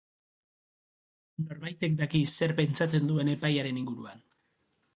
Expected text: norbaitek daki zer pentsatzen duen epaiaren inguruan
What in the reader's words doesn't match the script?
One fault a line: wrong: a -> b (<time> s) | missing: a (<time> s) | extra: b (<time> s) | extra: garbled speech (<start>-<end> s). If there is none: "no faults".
no faults